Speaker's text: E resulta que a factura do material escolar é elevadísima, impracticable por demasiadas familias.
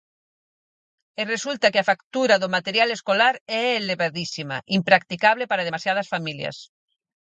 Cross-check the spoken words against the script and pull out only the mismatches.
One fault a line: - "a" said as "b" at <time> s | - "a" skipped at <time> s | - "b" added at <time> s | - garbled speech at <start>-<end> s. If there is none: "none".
- "por" said as "para" at 5.5 s